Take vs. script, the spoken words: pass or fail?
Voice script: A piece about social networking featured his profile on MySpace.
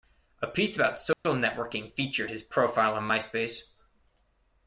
pass